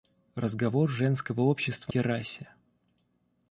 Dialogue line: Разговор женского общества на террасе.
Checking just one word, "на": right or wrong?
wrong